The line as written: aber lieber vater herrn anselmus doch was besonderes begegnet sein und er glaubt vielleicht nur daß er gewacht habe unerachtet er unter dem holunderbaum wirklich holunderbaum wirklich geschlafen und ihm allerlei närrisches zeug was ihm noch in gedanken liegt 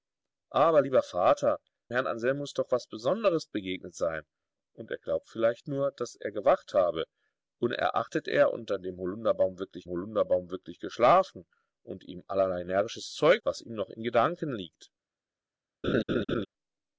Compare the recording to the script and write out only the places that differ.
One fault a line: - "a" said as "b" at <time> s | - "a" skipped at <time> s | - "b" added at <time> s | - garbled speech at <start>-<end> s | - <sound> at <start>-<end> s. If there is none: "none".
- laugh at 15.8-16.5 s